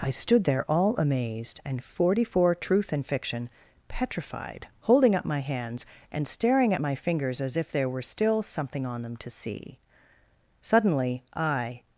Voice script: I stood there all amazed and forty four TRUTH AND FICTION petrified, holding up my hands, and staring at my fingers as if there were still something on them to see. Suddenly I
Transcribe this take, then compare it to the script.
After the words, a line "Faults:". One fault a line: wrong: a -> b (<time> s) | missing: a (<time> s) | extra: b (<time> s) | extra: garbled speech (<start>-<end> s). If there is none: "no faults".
I stood there all amazed and forty four TRUTH AND FICTION petrified, holding up my hands, and staring at my fingers as if there were still something on them to see. Suddenly I
Faults:
no faults